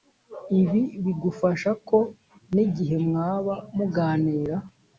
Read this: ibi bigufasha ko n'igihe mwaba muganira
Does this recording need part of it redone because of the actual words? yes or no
no